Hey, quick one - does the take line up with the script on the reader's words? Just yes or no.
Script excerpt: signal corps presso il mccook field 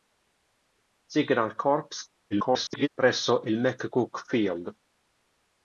no